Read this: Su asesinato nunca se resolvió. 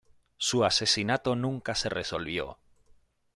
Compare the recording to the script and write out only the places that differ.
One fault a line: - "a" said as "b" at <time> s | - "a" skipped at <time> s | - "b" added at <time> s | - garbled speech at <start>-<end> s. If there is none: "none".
none